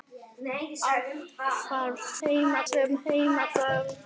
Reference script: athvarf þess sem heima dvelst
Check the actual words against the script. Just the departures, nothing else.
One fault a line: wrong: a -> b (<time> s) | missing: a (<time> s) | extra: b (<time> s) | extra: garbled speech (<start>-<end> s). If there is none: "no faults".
wrong: þess -> heima (2.3 s)